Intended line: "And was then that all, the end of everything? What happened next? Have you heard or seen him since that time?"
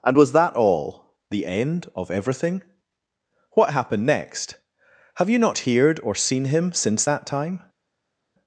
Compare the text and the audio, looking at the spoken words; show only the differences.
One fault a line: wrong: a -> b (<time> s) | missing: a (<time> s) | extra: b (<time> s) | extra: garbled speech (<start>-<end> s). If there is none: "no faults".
missing: then (0.3 s)
extra: not (5.4 s)